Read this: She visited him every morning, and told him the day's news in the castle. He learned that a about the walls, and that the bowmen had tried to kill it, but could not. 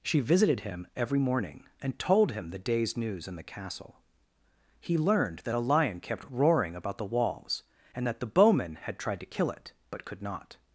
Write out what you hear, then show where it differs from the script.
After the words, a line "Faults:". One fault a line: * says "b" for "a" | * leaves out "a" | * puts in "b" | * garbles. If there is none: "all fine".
She visited him every morning, and told him the day's news in the castle. He learned that a lion kept roaring about the walls, and that the bowmen had tried to kill it, but could not.
Faults:
* puts in "lion kept roaring"